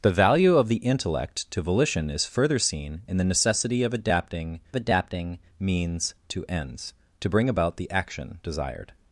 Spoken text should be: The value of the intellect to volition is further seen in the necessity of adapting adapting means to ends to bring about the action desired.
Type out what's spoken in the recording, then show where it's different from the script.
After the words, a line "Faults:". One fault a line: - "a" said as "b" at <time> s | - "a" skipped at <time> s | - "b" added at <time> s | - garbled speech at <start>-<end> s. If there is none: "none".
The value of the intellect to volition is further seen in the necessity of adapting adapting means to ends to bring about the action desired.
Faults:
none